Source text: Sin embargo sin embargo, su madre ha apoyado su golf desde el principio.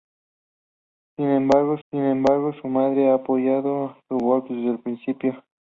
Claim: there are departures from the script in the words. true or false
false